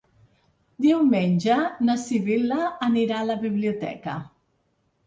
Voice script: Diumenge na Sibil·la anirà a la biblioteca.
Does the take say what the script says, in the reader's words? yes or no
yes